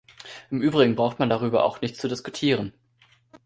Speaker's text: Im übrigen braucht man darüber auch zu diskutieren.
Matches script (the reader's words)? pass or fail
fail